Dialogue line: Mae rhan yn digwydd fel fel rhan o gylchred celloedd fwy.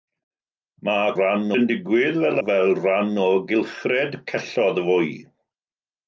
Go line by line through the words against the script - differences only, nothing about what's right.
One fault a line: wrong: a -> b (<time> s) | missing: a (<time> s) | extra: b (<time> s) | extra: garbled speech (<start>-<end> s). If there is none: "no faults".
no faults